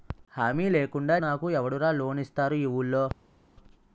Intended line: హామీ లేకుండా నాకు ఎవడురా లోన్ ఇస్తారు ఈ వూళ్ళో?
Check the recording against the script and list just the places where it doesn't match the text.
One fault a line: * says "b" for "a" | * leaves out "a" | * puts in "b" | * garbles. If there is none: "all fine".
all fine